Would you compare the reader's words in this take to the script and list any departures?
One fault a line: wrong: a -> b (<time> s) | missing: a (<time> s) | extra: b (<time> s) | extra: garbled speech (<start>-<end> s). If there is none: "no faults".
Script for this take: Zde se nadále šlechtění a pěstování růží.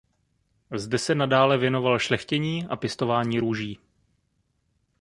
extra: věnoval (1.6 s)